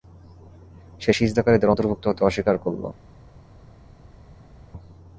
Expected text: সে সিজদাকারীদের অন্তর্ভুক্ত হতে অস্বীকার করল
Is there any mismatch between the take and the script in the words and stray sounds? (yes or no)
no